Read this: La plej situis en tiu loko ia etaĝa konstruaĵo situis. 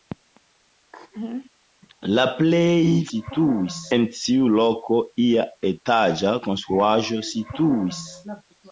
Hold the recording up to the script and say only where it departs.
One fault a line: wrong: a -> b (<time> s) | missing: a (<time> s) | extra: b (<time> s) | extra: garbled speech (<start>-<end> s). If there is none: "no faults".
no faults